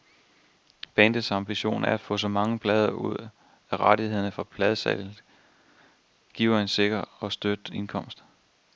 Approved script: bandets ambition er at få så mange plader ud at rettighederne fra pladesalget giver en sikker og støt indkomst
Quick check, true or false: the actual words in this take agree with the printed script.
true